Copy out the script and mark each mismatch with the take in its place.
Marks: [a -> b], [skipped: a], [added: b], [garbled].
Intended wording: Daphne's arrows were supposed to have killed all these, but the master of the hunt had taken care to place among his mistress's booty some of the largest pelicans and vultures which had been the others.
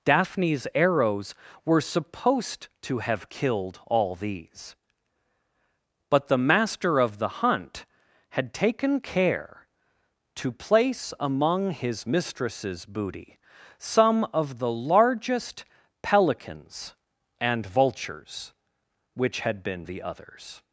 Daphne's arrows were supposed to have killed all these, but the master of the hunt had taken care to place among his mistress's booty some of the largest pelicans and vultures which had been the others.